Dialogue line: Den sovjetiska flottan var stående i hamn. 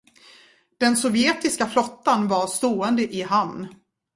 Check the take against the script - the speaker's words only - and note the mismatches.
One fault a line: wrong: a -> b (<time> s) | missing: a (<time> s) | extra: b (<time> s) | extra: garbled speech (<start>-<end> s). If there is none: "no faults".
no faults